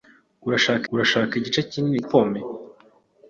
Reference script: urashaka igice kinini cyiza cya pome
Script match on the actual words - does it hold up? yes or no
no